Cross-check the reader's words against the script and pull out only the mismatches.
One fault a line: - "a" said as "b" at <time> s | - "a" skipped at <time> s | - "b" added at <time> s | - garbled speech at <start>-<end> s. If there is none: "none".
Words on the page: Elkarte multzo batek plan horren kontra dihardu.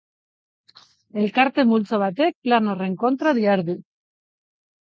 none